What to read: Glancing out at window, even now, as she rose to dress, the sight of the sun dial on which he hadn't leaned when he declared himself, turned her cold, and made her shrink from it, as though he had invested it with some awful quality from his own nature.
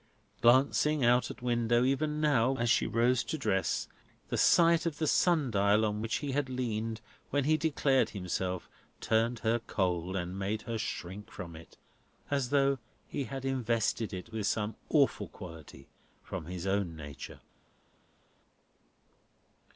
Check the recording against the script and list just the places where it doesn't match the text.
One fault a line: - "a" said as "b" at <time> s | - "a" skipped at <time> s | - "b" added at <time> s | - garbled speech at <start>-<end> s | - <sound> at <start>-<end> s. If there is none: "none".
- "hadn't" said as "had" at 6.3 s